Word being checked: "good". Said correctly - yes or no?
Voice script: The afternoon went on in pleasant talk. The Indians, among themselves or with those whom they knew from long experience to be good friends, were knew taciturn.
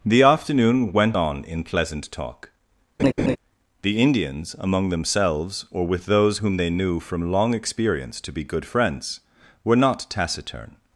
yes